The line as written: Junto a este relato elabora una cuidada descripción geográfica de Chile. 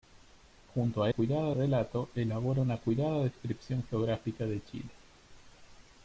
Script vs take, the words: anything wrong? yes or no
yes